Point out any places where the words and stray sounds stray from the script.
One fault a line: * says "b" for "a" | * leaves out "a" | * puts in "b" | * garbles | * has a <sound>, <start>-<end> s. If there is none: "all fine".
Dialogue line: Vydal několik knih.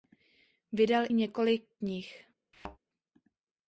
* has a thud, 2.5-2.8 s